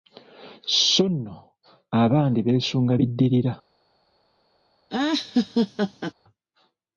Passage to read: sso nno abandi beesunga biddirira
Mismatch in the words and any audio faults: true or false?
true